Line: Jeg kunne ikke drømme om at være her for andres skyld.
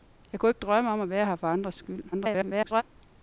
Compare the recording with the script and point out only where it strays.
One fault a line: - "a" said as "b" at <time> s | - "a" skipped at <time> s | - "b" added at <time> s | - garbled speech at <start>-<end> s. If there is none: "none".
- garbled speech at 2.1-2.8 s